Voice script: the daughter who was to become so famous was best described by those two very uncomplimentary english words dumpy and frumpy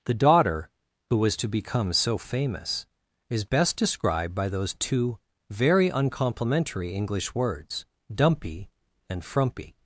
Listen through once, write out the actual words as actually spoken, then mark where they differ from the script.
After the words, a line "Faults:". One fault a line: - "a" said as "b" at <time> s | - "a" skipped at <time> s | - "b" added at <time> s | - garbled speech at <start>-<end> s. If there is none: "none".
the daughter who was to become so famous is best described by those two very uncomplimentary english words dumpy and frumpy
Faults:
- "was" said as "is" at 3.3 s